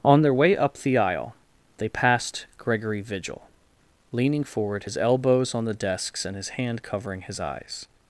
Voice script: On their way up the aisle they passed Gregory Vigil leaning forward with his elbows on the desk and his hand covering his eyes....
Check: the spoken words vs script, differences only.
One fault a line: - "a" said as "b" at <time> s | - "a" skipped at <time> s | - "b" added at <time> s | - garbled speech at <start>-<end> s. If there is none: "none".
- "with" skipped at 4.8 s
- "desk" said as "desks" at 5.7 s